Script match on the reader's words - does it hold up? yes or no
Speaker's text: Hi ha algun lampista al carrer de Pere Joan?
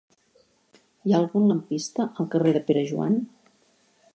yes